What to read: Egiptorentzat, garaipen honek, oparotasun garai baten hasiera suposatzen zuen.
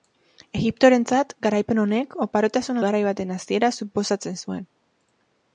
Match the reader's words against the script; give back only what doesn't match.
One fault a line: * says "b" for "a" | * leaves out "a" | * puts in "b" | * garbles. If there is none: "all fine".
all fine